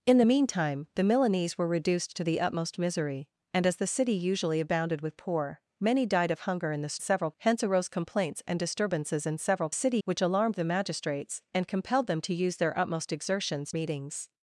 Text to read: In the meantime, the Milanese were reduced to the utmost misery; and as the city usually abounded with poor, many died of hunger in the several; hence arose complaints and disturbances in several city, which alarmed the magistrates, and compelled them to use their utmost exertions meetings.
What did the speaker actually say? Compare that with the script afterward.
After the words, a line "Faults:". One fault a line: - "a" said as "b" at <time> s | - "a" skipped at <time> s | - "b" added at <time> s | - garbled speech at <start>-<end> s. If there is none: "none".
In the meantime, the Milanese were reduced to the utmost misery; and as the city usually abounded with poor, many died of hunger in the several; hence arose complaints and disturbances in several city, which alarmed the magistrates, and compelled them to use their utmost exertions meetings.
Faults:
none